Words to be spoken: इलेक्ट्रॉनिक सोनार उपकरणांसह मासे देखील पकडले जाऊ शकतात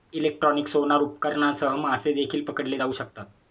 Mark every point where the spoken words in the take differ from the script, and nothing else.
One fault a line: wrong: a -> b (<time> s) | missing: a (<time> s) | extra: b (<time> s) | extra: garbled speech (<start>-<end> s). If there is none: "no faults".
no faults